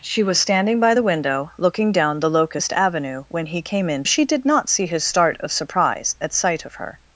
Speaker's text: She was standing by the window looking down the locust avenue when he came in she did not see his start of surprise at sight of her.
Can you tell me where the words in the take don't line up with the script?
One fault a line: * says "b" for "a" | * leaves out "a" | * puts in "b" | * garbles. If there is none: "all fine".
all fine